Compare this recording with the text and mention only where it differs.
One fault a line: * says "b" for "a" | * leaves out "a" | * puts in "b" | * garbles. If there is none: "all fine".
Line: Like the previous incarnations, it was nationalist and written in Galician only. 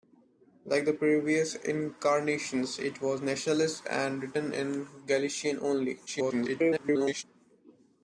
* garbles